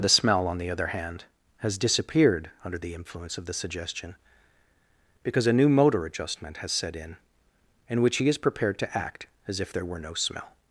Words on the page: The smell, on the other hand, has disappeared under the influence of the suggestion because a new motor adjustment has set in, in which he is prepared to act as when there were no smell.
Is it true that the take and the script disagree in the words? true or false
true